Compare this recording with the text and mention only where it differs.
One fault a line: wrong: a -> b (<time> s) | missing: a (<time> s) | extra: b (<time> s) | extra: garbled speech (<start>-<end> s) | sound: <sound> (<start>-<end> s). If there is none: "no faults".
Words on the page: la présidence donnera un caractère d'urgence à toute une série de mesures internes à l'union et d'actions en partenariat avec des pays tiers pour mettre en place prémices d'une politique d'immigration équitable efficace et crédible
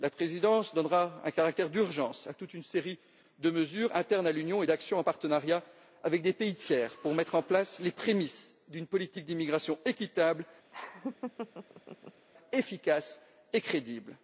extra: les (7.8 s)
sound: laugh (10.7-12.3 s)